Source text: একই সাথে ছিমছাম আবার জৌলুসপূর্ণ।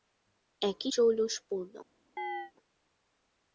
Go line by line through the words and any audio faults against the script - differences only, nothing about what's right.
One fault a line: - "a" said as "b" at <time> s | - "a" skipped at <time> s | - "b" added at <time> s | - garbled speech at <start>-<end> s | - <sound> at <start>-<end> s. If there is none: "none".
- "সাথে ছিমছাম আবার" skipped at 0.9 s
- chirp at 2.2-2.5 s